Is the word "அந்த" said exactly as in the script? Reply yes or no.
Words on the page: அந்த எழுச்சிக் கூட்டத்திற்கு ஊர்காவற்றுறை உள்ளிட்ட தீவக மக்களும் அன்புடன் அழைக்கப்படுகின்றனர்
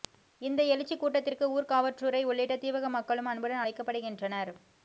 no